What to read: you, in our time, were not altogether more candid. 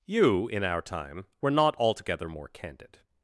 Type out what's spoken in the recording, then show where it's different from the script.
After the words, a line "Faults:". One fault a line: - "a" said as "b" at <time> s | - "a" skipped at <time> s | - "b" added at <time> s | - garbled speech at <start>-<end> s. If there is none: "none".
you, in our time, were not altogether more candid.
Faults:
none